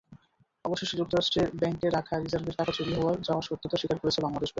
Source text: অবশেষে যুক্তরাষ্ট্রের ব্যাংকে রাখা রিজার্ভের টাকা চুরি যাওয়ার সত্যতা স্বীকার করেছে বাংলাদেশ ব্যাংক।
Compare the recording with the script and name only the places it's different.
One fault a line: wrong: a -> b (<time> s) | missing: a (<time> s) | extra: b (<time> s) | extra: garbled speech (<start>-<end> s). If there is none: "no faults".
no faults